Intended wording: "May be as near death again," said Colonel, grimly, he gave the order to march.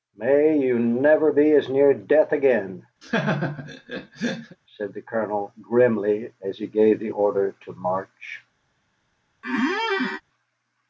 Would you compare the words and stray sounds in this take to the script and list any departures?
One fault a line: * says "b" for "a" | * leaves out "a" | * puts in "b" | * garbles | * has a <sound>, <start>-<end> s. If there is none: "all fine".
* puts in "you never"
* has a laugh, 3.0-4.6 s
* puts in "the"
* puts in "as"
* has a squeak, 9.4-10.2 s